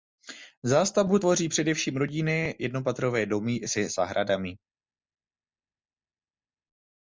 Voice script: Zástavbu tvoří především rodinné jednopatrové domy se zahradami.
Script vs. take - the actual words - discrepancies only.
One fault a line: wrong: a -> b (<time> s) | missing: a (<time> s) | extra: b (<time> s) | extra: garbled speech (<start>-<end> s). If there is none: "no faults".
no faults